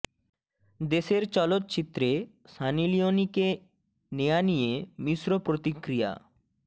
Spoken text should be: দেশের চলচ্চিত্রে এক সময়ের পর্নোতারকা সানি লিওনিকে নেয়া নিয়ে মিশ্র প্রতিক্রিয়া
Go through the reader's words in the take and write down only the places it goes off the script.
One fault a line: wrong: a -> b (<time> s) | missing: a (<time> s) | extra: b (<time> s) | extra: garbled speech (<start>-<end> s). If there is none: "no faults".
missing: এক সময়ের পর্নোতারকা (2.1 s)